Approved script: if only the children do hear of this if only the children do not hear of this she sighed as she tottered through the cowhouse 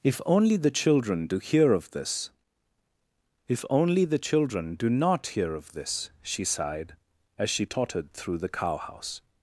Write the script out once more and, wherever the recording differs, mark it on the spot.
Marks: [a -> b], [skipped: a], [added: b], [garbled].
if only the children do hear of this if only the children do not hear of this she sighed as she tottered through the cowhouse